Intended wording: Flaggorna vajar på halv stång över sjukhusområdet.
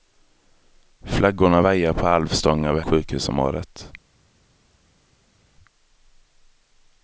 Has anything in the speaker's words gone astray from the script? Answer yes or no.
no